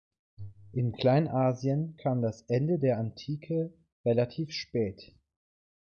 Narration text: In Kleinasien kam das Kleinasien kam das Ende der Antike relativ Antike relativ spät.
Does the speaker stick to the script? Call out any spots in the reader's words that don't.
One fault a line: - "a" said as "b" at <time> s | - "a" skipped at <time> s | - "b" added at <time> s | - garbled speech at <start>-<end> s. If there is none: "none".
- "Kleinasien kam das" skipped at 2.4 s
- "Antike relativ" skipped at 4.5 s